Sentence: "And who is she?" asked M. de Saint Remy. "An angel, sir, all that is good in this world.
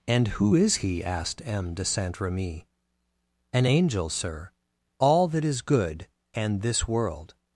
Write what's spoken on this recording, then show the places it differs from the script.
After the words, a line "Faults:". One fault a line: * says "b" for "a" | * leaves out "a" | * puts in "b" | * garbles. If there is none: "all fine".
"And who is he?" asked M. de Saint Remy. "An angel, sir, all that is good and this world.
Faults:
* says "he" for "she"
* says "and" for "in"